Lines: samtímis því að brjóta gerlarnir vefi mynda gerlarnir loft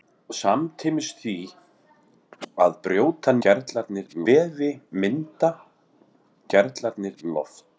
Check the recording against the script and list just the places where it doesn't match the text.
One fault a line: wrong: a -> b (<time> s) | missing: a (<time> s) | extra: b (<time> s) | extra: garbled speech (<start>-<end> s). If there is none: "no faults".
no faults